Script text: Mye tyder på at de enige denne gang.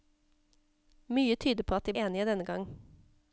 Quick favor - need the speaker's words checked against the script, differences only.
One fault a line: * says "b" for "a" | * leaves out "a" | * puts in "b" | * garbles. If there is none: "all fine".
all fine